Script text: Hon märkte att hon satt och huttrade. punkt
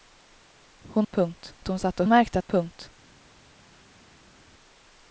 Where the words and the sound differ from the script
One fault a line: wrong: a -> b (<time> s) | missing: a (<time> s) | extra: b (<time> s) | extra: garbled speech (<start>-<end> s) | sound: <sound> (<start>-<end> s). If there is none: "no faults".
wrong: märkte -> punkt (1.1 s)
wrong: huttrade -> märkte (2.1 s)